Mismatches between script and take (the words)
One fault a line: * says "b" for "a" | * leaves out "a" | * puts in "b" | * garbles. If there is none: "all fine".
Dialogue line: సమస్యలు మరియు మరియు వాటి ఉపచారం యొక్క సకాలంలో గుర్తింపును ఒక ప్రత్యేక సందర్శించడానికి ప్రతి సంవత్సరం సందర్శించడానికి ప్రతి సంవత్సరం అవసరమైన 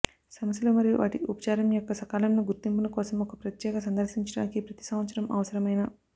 * leaves out "మరియు"
* puts in "కోసం"
* leaves out "సందర్శించడానికి ప్రతి సంవత్సరం"